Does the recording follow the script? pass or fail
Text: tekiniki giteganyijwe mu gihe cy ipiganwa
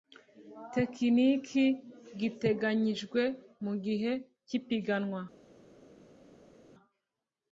pass